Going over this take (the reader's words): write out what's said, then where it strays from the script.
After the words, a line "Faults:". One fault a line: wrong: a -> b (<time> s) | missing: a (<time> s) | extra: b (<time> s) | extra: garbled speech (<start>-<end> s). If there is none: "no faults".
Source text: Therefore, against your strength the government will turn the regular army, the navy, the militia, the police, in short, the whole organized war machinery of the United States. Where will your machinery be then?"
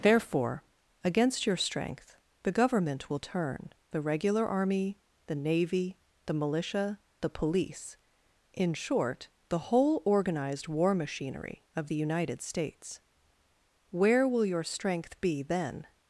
Therefore, against your strength the government will turn the regular army, the navy, the militia, the police, in short, the whole organized war machinery of the United States. Where will your strength be then?"
Faults:
wrong: machinery -> strength (14.6 s)